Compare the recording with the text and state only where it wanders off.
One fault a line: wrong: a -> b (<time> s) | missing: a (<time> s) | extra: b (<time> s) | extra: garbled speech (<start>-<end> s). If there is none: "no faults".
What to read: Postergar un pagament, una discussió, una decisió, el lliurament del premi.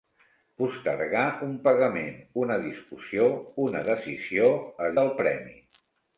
missing: lliurament (5.0 s)